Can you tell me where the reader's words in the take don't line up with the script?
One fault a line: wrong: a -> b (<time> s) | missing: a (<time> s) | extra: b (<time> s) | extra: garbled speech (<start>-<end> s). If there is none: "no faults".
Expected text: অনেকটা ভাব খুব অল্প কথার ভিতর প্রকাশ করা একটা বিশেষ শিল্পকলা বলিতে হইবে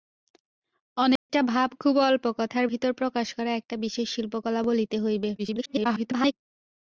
extra: garbled speech (5.4-6.3 s)